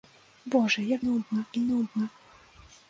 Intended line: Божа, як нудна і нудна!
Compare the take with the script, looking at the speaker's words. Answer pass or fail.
pass